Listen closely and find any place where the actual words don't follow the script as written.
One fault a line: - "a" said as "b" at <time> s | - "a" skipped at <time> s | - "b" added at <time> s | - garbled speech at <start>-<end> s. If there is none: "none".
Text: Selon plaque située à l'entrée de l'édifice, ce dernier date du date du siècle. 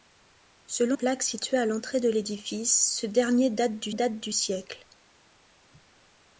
none